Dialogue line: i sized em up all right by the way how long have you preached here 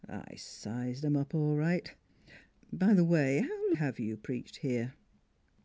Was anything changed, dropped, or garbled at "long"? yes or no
yes